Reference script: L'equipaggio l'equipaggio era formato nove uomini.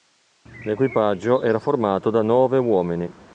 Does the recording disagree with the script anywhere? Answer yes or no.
yes